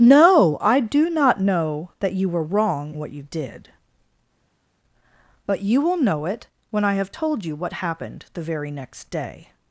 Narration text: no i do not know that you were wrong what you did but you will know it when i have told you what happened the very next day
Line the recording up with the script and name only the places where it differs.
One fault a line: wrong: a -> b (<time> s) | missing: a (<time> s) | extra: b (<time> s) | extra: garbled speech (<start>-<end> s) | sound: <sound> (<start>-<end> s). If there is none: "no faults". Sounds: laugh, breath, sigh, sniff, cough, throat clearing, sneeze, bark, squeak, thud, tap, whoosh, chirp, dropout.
no faults